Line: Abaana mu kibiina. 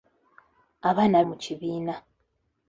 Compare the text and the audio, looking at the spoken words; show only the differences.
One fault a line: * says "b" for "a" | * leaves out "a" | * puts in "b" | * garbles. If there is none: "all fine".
all fine